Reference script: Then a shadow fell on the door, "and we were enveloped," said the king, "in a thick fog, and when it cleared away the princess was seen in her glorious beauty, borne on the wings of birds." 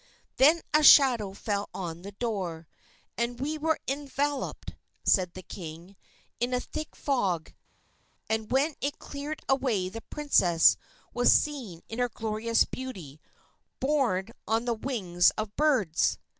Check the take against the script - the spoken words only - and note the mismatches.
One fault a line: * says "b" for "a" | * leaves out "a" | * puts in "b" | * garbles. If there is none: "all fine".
all fine